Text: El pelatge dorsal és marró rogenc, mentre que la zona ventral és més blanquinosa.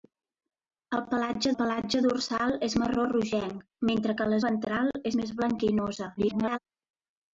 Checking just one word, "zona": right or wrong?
wrong